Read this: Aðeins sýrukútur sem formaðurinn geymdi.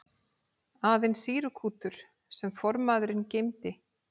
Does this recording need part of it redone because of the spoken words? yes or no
no